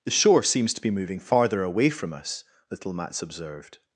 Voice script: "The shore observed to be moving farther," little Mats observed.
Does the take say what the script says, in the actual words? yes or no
no